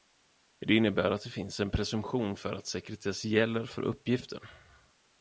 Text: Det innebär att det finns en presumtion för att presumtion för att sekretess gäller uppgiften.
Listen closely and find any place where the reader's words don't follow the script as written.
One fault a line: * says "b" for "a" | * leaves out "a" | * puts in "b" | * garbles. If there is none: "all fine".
* leaves out "presumtion för att"
* puts in "för"